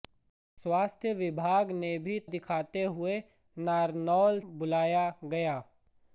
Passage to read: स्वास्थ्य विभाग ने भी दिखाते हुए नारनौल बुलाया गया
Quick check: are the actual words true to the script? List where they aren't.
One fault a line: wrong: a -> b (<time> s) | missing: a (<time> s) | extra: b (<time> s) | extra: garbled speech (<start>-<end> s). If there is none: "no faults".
no faults